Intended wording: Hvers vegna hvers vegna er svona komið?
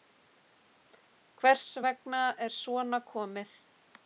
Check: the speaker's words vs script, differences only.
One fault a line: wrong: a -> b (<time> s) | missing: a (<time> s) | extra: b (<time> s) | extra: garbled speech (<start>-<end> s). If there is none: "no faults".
missing: hvers vegna (2.2 s)